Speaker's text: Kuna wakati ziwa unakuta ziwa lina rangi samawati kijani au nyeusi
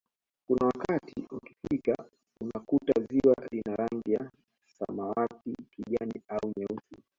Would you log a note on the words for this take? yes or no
yes